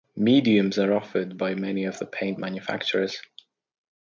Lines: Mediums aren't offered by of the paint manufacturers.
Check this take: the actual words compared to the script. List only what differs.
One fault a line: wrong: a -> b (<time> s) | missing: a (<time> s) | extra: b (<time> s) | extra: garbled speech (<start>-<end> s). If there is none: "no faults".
wrong: aren't -> are (0.8 s)
extra: many (1.6 s)